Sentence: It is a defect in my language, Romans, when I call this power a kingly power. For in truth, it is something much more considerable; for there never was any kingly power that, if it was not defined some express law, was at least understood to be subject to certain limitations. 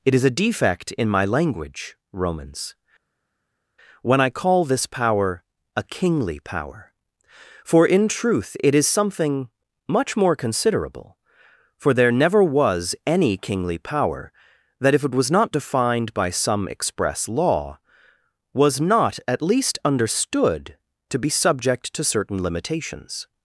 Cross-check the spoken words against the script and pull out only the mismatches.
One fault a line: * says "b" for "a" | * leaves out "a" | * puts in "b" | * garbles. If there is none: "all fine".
* puts in "by"
* puts in "not"